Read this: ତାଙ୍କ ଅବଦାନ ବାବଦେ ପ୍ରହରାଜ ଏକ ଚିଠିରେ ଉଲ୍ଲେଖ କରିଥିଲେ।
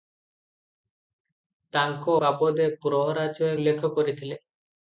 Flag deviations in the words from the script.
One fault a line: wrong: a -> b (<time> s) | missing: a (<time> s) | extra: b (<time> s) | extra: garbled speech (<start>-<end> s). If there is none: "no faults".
missing: ଅବଦାନ (2.1 s)
missing: ଏକ ଚିଠିରେ (3.5 s)